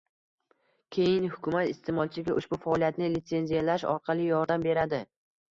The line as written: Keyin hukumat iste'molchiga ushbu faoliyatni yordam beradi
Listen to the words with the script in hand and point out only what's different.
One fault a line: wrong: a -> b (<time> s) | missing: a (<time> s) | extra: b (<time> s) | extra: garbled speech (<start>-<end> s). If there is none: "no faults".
extra: litsenziyalash orqali (3.2 s)